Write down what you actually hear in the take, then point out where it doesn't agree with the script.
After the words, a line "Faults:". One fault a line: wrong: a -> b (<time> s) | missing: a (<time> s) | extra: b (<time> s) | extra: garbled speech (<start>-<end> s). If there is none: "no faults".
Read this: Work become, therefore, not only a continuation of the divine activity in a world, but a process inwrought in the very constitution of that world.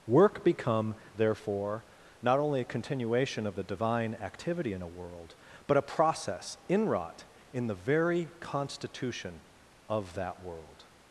Work become, therefore, not only a continuation of the divine activity in a world, but a process inwrought in the very constitution of that world.
Faults:
no faults